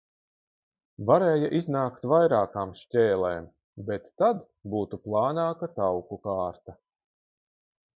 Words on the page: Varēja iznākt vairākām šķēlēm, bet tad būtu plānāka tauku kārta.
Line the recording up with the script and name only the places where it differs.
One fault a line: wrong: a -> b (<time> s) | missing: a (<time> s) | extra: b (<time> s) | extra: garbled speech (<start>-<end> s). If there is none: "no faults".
no faults